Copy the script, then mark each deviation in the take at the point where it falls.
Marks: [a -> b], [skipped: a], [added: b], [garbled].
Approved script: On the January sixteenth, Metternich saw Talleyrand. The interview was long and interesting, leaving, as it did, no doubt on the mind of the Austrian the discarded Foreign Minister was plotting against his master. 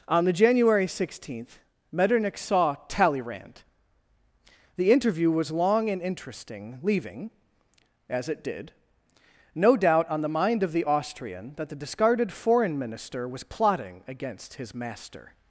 On the January sixteenth, Metternich saw Talleyrand. The interview was long and interesting, leaving, as it did, no doubt on the mind of the Austrian [added: that] the discarded Foreign Minister was plotting against his master.